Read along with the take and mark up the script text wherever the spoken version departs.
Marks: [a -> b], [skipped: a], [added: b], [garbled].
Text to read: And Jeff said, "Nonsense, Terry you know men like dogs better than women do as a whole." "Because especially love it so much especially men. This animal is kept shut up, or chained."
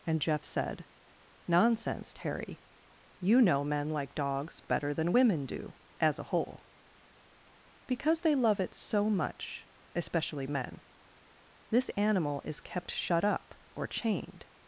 And Jeff said, "Nonsense, Terry you know men like dogs better than women do as a whole." "Because [especially -> they] love it so much especially men. This animal is kept shut up, or chained."